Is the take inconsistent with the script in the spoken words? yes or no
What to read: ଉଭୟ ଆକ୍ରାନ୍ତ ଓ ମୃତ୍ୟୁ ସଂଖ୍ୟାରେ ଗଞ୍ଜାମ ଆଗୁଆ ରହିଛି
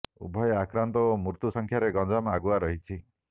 no